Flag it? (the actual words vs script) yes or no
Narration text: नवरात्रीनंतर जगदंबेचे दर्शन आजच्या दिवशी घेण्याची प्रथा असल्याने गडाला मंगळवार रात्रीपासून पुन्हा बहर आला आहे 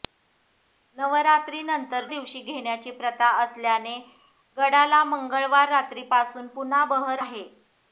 yes